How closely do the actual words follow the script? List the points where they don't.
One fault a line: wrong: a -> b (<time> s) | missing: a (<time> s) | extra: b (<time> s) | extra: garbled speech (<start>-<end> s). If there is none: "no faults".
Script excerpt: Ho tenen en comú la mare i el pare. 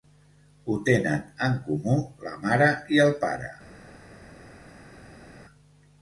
no faults